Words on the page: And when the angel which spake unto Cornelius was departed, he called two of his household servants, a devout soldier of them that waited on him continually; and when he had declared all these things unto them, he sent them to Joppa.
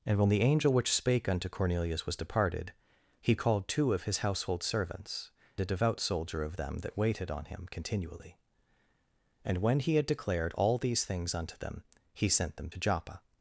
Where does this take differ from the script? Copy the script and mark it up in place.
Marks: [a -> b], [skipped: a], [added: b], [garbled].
And when the angel which spake unto Cornelius was departed, he called two of his household servants, a devout soldier of them that waited on him continually; and when he had declared all these things unto them, he sent them to Joppa.